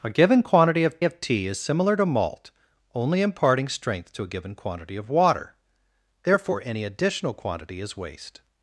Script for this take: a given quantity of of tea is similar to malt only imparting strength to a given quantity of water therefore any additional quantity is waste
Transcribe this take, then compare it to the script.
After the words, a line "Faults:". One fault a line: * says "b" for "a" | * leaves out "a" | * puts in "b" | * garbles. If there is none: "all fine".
a given quantity of of tea is similar to malt only imparting strength to a given quantity of water therefore any additional quantity is waste
Faults:
all fine